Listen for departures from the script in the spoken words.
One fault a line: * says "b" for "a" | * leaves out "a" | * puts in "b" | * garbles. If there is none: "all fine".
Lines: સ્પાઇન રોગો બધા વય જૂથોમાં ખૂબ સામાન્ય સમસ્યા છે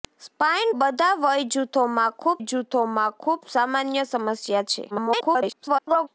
* leaves out "રોગો"
* puts in "જૂથોમાં ખૂબ"
* garbles